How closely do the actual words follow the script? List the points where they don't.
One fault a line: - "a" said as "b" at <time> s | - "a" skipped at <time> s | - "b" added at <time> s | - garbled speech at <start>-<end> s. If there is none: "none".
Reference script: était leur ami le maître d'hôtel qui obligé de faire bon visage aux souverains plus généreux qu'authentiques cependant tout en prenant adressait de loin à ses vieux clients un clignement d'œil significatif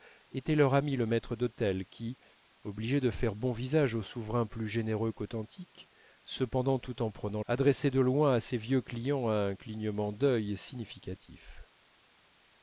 none